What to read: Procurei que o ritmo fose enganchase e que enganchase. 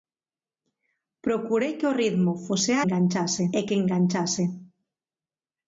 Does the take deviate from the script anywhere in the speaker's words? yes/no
no